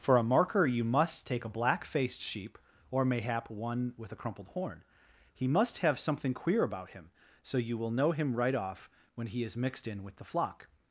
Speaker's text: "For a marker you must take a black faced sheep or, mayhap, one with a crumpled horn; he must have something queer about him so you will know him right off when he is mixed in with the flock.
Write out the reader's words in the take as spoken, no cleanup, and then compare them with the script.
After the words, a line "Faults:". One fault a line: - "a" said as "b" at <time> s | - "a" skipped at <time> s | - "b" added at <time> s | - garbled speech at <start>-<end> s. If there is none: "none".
"For a marker you must take a black faced sheep or, mayhap, one with a crumpled horn; he must have something queer about him so you will know him right off when he is mixed in with the flock.
Faults:
none